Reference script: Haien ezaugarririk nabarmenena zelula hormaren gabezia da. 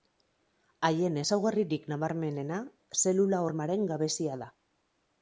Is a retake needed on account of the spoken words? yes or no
no